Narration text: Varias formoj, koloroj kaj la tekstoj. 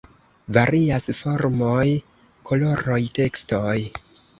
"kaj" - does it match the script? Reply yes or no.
no